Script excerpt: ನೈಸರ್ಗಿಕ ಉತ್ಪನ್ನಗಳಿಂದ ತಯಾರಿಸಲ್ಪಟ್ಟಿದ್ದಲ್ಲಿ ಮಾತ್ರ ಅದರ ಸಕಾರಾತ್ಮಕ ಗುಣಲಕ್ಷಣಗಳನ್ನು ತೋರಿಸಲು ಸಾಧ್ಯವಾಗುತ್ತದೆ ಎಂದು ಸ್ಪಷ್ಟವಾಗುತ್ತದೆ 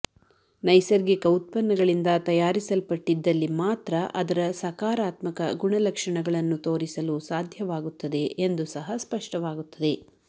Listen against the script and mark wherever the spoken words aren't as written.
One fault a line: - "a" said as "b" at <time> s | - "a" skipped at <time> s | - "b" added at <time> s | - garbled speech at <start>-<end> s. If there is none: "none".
- "ಸಹ" added at 8.7 s